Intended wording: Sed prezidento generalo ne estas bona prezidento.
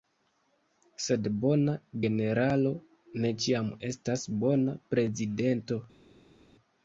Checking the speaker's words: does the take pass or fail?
fail